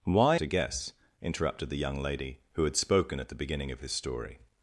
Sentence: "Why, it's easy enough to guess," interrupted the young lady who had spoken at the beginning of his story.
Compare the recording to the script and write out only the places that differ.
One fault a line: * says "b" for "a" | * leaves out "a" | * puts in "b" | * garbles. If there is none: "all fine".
* leaves out "it's easy enough"